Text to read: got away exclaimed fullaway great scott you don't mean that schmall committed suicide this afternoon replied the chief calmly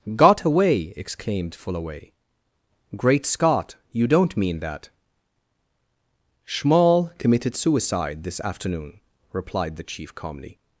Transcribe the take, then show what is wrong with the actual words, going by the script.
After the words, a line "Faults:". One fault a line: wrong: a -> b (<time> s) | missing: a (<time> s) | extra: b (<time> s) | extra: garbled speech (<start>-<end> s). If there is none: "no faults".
got away exclaimed fullaway great scott you don't mean that schmall committed suicide this afternoon replied the chief calmly
Faults:
no faults